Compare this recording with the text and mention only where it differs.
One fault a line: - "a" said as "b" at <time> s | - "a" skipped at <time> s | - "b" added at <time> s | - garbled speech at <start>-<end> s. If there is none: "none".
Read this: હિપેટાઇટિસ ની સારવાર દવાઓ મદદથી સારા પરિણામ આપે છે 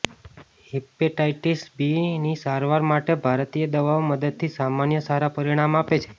- "બી" added at 1.8 s
- "માટે ભારતીય" added at 2.9 s
- "સામાન્ય" added at 4.5 s